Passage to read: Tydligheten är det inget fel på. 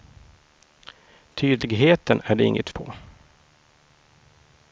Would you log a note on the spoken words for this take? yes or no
yes